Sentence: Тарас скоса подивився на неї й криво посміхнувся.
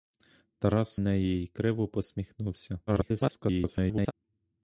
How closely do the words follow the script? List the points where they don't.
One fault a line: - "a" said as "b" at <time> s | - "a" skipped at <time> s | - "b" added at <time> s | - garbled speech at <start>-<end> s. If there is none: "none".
- "скоса подивився на" skipped at 0.9 s
- garbled speech at 2.9-4.1 s